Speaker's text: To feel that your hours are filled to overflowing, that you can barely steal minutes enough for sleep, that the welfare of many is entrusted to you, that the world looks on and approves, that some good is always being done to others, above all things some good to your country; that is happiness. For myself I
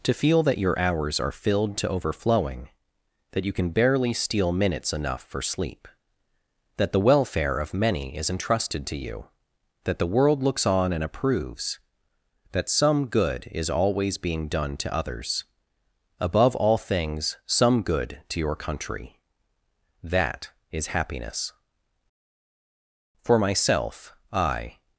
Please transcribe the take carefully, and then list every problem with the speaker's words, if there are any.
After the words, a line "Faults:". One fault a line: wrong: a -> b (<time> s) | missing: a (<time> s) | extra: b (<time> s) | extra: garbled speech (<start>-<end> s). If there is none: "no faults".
To feel that your hours are filled to overflowing, that you can barely steal minutes enough for sleep, that the welfare of many is entrusted to you, that the world looks on and approves, that some good is always being done to others, above all things some good to your country; that is happiness. For myself I
Faults:
no faults